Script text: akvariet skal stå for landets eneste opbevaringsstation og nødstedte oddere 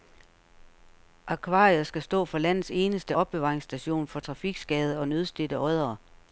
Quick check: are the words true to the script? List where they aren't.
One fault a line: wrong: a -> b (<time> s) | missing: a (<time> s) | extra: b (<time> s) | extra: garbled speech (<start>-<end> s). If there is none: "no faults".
extra: for trafikskadede (4.1 s)